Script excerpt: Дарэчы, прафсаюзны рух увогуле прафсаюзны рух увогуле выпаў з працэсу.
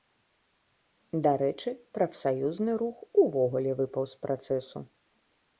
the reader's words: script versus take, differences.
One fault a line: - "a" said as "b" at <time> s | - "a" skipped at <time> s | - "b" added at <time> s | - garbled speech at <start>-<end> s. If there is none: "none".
- "прафсаюзны рух увогуле" skipped at 3.7 s